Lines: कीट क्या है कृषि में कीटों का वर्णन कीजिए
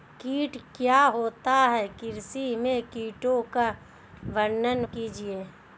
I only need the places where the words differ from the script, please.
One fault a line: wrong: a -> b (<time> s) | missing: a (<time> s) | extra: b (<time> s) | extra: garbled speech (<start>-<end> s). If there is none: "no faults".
extra: होता (1.1 s)